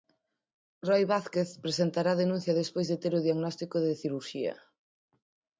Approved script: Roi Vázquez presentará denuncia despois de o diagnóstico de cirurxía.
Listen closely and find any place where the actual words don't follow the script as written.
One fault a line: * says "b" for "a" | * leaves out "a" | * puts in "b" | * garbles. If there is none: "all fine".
* puts in "ter"